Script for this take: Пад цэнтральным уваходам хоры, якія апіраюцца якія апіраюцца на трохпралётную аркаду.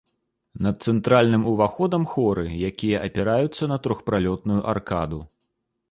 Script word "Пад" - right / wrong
wrong